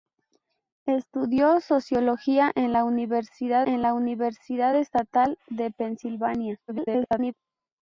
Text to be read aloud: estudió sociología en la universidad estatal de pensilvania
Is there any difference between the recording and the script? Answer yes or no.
yes